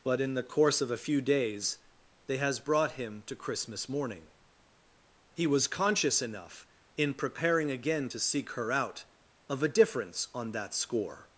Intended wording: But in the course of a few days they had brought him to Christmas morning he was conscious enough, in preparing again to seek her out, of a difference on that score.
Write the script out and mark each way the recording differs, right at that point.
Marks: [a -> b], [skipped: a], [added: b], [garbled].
But in the course of a few days they [had -> has] brought him to Christmas morning he was conscious enough, in preparing again to seek her out, of a difference on that score.